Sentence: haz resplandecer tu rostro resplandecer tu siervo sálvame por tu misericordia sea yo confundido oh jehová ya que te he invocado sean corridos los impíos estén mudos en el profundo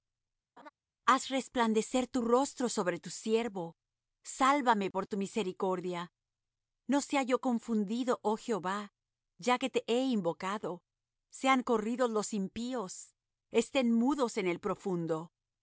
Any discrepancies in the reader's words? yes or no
yes